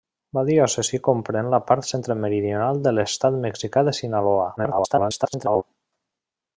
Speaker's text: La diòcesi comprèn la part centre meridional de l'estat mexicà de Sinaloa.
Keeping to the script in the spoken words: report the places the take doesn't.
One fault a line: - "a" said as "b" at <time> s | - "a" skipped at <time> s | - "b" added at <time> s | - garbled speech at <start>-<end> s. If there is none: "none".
- garbled speech at 4.6-5.6 s